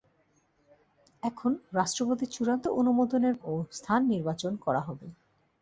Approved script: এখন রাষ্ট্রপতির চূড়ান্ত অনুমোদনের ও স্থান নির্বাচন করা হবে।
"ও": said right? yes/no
yes